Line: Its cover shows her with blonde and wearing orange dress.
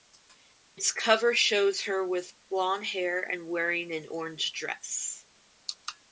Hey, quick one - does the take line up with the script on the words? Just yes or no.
no